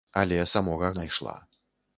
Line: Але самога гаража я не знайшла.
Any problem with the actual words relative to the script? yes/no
yes